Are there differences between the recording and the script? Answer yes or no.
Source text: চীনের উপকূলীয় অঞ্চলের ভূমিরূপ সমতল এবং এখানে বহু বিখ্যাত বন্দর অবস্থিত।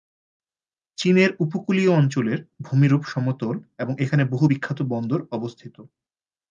no